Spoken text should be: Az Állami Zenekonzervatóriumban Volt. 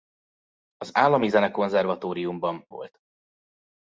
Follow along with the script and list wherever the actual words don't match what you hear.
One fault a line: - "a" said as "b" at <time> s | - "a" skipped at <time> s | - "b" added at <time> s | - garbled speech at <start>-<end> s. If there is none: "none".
none